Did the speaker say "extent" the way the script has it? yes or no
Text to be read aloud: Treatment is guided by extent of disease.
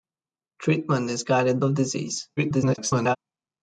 no